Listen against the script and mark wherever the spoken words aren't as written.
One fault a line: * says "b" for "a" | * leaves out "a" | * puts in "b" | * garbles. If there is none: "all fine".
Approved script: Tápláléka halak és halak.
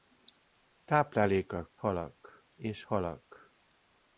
all fine